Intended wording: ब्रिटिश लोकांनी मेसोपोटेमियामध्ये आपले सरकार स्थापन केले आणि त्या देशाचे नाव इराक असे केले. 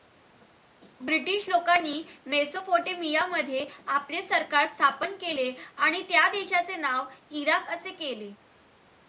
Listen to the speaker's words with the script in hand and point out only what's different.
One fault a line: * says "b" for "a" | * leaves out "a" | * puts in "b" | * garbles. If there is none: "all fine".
all fine